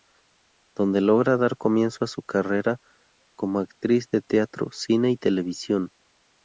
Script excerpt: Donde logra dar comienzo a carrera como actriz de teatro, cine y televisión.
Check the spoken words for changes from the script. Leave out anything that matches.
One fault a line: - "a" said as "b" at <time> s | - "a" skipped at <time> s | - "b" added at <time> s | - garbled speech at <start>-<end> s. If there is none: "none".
- "su" added at 2.1 s